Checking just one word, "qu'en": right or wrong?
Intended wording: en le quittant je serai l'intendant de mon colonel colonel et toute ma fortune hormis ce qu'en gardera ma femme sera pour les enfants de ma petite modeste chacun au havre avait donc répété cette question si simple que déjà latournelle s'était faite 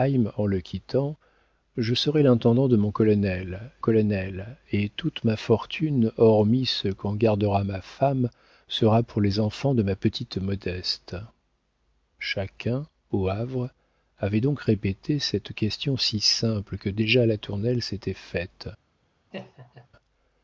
right